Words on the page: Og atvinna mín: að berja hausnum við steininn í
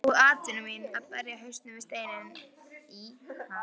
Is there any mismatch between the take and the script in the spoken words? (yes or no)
no